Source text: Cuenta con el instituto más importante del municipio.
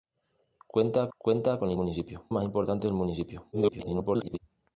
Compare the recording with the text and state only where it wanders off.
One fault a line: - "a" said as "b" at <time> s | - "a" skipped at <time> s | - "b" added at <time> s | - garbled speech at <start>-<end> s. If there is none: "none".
- "cuenta" added at 1.2 s
- "instituto" said as "municipio" at 1.7 s
- garbled speech at 3.5-4.4 s